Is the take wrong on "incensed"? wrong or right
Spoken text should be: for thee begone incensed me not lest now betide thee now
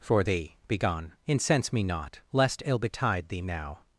wrong